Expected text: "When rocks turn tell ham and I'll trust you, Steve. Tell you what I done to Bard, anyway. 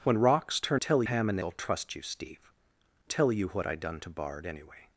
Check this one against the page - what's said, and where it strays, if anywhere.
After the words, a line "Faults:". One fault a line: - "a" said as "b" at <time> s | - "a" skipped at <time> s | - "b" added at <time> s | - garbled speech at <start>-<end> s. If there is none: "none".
"When rocks turn tell ham and I'll trust you, Steve. Tell you what I done to Bard, anyway.
Faults:
none